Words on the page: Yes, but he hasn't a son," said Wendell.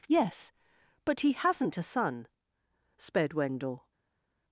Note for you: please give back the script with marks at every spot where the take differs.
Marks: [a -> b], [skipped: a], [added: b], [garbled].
Yes, but he hasn't a son," [said -> sped] Wendell.